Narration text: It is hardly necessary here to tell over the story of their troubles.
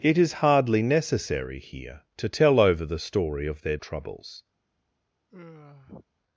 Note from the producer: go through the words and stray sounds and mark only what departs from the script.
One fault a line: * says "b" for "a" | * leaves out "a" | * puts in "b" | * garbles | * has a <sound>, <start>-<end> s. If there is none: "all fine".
* has a sigh, 5.3-6.1 s